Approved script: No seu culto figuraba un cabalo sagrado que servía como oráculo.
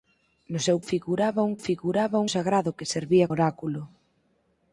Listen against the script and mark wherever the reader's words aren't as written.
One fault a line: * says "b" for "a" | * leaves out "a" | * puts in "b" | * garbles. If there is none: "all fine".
* leaves out "culto"
* says "figuraba" for "cabalo"
* leaves out "como"